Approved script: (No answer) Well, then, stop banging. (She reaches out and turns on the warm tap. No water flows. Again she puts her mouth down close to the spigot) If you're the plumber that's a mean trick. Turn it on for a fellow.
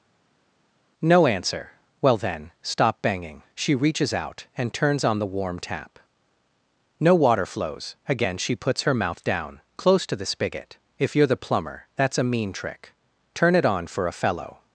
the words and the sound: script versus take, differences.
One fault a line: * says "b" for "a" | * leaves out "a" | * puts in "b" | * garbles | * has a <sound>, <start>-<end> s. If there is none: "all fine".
all fine